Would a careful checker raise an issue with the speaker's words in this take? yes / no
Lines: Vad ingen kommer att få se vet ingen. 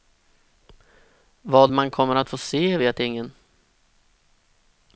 yes